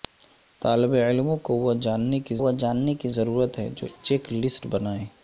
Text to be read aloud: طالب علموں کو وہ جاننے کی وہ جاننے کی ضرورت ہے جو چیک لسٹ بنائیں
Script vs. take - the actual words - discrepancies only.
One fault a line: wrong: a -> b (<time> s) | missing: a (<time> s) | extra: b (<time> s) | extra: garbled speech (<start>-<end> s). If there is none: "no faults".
no faults